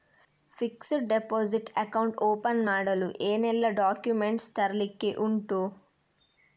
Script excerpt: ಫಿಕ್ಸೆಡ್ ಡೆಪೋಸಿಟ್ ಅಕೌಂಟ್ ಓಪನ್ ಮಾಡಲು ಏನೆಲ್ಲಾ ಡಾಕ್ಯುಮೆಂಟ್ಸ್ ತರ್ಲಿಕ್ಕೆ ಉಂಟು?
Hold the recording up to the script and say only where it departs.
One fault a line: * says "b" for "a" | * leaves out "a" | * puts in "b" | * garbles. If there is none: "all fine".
all fine